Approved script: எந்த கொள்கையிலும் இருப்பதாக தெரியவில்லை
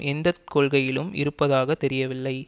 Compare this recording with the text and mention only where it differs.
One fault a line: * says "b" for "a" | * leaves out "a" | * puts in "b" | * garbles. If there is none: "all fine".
all fine